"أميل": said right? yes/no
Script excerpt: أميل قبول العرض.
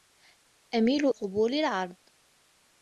yes